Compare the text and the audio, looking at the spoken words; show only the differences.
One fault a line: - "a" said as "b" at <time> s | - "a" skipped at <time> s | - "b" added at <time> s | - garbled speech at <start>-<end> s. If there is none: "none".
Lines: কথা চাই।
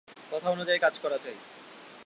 - "অনুযায়ী কাজ করা" added at 0.5 s